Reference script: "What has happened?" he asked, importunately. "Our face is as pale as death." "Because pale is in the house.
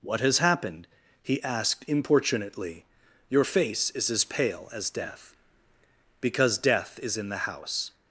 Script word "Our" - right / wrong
wrong